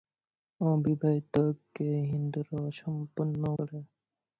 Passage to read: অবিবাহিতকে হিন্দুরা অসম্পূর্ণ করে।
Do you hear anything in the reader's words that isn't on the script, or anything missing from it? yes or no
no